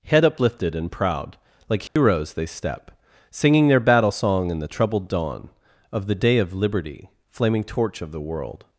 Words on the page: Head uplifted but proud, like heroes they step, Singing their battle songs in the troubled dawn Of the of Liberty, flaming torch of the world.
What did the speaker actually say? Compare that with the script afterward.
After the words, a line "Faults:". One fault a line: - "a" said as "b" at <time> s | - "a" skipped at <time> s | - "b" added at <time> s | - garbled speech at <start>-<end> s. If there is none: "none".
Head uplifted and proud, like heroes they step, Singing their battle song in the troubled dawn Of the day of Liberty, flaming torch of the world.
Faults:
- "but" said as "and" at 0.8 s
- "songs" said as "song" at 4.1 s
- "day" added at 6.2 s